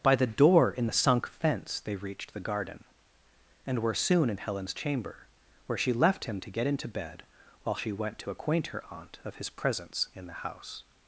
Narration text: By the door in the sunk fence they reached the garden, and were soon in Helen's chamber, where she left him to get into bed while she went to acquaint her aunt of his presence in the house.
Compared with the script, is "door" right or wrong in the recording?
right